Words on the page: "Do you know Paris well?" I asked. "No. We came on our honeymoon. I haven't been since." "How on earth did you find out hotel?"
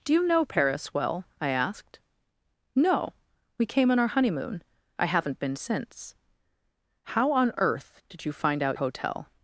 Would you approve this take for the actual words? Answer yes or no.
yes